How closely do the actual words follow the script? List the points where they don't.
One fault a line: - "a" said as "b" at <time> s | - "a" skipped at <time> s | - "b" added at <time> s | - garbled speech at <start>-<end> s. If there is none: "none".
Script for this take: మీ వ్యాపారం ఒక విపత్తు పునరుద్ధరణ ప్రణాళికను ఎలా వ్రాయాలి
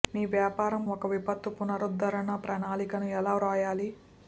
none